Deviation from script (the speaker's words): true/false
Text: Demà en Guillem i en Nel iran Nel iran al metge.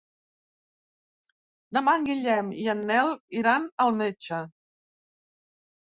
true